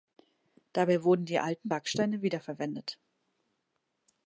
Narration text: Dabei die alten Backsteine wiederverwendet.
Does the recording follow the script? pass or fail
fail